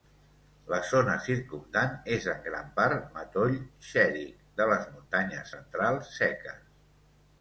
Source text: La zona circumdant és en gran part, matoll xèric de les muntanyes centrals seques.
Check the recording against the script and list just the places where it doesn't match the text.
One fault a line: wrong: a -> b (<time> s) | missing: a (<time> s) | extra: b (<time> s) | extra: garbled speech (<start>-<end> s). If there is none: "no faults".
no faults